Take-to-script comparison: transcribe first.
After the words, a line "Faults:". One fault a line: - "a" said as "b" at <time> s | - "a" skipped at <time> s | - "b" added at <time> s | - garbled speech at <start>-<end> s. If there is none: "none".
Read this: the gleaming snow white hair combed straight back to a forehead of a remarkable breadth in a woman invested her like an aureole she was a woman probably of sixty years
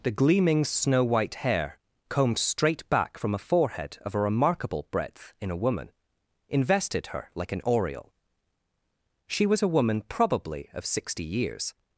the gleaming snow white hair combed straight back from a forehead of a remarkable breadth in a woman invested her like an aureole she was a woman probably of sixty years
Faults:
- "to" said as "from" at 3.2 s